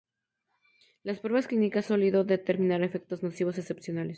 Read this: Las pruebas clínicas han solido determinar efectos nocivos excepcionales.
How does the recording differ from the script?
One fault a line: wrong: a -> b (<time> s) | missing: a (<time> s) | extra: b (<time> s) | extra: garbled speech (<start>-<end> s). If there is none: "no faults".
missing: han (1.9 s)